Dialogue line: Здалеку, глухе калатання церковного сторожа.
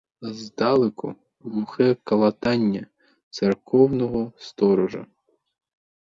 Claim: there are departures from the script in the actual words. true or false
false